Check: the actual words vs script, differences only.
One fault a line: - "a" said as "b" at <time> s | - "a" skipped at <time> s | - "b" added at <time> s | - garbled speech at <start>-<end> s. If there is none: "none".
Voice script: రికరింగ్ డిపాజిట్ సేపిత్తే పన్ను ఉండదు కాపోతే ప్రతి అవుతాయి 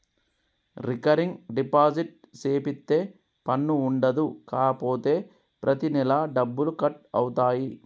- "నెలా డబ్బులు కట్" added at 5.9 s